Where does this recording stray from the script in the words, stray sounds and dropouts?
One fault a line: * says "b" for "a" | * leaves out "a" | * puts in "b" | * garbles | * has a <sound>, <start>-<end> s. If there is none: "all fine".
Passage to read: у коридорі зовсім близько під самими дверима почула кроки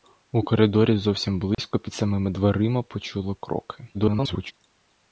* has a dropout, 1.5-1.6 s
* garbles